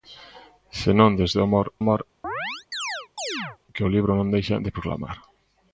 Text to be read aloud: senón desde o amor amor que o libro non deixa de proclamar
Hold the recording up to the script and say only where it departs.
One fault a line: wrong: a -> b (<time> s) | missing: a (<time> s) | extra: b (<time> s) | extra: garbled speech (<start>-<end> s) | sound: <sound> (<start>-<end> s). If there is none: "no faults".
sound: chirp (2.2-3.6 s)